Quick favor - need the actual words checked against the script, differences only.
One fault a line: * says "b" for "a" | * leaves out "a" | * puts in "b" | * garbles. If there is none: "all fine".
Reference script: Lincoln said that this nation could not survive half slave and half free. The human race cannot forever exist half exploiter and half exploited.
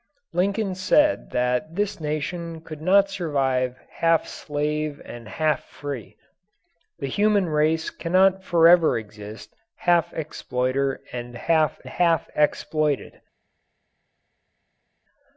* puts in "half"